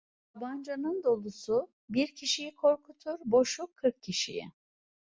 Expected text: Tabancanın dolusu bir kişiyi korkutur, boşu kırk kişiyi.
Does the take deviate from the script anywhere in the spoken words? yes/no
no